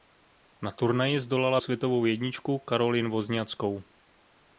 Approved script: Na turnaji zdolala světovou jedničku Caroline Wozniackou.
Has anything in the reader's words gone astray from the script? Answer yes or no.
no